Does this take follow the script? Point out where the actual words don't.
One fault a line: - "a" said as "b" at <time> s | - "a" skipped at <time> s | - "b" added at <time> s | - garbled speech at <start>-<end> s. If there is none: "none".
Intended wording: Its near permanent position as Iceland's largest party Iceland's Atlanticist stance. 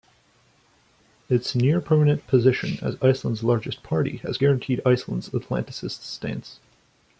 - "has guaranteed" added at 4.2 s